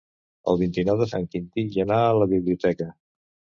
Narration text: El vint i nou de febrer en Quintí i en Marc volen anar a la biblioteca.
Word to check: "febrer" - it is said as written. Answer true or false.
false